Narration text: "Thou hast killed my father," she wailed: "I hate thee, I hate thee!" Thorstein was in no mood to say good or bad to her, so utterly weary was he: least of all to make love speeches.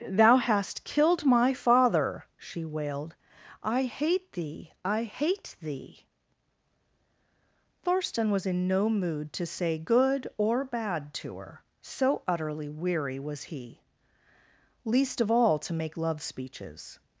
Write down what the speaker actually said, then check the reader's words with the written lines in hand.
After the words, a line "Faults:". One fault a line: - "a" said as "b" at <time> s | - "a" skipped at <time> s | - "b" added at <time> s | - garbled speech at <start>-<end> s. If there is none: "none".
"Thou hast killed my father," she wailed: "I hate thee, I hate thee!" Thorstein was in no mood to say good or bad to her, so utterly weary was he: least of all to make love speeches.
Faults:
none